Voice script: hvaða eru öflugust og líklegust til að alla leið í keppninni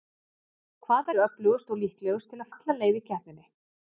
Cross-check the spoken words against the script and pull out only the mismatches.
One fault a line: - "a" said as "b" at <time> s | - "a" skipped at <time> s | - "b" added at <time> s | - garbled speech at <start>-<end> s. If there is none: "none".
none